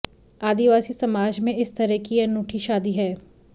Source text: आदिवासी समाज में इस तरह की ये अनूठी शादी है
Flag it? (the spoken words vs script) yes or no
no